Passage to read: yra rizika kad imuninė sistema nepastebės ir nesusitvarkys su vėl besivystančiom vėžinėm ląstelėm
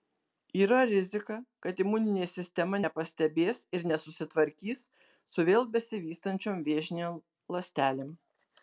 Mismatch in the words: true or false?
false